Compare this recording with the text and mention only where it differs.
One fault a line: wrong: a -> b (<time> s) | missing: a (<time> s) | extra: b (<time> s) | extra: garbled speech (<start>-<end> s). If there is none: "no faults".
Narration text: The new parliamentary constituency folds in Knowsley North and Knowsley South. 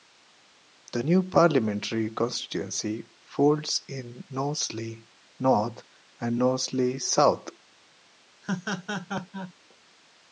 no faults